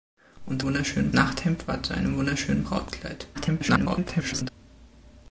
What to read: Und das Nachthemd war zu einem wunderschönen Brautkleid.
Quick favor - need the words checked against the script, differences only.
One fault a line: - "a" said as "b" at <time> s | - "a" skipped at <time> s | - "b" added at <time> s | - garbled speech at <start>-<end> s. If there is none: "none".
- "das" said as "wunderschönen" at 0.7 s
- garbled speech at 3.3-4.5 s